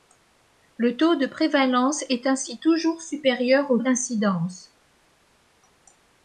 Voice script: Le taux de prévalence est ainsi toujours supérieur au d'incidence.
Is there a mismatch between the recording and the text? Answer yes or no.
no